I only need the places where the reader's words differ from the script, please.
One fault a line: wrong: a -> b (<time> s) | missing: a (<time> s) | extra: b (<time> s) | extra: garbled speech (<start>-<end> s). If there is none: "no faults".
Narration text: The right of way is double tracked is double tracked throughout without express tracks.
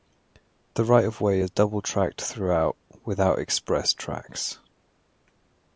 missing: is double tracked (2.2 s)